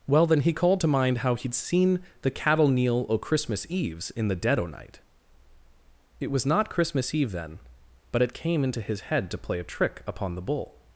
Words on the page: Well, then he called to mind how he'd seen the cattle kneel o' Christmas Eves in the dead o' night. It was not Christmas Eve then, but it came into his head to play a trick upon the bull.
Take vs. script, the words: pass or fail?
pass